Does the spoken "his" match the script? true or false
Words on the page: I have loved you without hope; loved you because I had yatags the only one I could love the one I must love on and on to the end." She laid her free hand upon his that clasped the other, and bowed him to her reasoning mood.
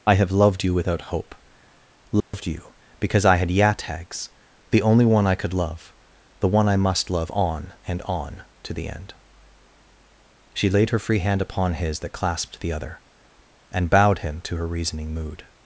true